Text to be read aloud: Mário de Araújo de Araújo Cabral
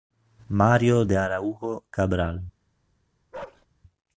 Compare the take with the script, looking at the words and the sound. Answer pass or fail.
fail